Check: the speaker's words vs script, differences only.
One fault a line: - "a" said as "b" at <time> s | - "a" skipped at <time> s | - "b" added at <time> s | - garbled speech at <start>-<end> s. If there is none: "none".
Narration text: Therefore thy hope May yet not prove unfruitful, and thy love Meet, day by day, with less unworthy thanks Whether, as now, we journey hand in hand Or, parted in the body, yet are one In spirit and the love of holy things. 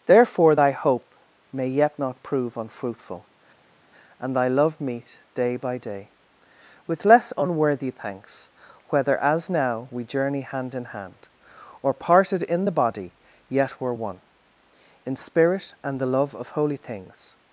- "are" said as "were" at 13.8 s